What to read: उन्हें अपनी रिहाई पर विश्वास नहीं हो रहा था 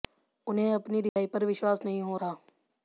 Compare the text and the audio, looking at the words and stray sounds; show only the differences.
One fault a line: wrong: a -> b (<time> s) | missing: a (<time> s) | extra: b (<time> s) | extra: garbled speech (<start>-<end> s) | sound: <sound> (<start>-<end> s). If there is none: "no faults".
sound: dropout (1.1-1.2 s)
missing: रहा (2.2 s)